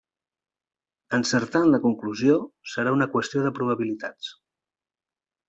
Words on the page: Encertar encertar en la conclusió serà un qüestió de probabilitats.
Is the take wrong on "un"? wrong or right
wrong